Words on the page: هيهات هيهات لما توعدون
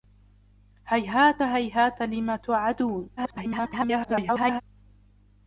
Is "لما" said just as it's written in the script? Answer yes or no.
yes